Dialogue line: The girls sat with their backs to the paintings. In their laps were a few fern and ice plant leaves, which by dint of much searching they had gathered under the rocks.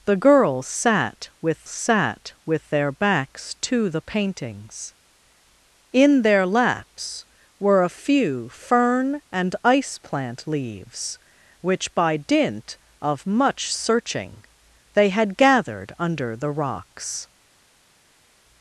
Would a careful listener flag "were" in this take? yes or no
no